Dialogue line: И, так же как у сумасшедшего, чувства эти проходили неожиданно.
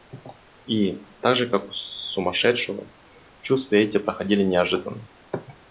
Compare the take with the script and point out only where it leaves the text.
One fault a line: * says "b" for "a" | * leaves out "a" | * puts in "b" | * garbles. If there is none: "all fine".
all fine